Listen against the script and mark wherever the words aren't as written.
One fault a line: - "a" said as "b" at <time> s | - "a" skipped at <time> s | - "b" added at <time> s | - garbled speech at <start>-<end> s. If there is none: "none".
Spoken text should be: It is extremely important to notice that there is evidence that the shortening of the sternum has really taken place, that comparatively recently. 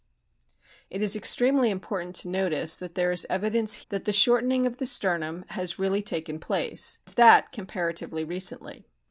none